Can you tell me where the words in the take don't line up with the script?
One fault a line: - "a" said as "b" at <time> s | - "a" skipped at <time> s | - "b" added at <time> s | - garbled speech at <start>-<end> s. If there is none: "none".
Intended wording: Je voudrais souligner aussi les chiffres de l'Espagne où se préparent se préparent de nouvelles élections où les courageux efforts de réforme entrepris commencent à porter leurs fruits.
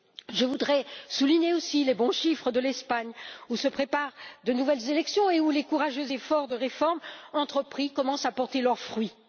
- "bons" added at 1.9 s
- "se préparent" skipped at 4.1 s
- "et" added at 5.3 s